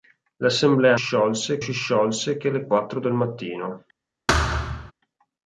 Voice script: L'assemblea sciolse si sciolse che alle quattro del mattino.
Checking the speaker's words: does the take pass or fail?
pass